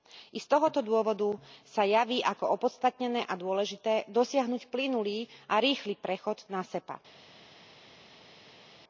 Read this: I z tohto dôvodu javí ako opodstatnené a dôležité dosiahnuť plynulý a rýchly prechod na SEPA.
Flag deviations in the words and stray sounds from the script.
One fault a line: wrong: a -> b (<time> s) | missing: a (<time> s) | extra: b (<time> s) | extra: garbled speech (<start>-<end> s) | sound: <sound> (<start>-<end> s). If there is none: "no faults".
extra: sa (1.6 s)